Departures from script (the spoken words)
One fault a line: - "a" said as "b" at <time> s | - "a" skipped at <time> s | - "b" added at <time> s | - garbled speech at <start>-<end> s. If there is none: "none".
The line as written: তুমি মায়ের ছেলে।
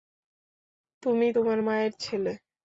- "তোমার" added at 1.3 s